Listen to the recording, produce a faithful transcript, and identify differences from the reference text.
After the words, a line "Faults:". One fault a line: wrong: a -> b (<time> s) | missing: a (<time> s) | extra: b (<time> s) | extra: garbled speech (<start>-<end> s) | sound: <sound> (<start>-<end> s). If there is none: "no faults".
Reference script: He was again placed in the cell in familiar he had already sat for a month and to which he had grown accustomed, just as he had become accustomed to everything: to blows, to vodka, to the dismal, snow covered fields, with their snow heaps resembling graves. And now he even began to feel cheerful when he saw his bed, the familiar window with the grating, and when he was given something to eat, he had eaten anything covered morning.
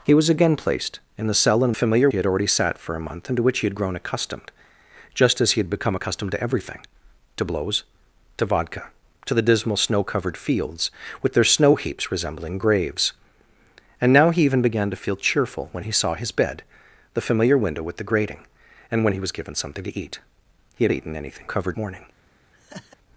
He was again placed in the cell in familiar he had already sat for a month and to which he had grown accustomed, just as he had become accustomed to everything: to blows, to vodka, to the dismal, snow covered fields, with their snow heaps resembling graves. And now he even began to feel cheerful when he saw his bed, the familiar window with the grating, and when he was given something to eat, he had eaten anything covered morning.
Faults:
sound: laugh (22.5-23.0 s)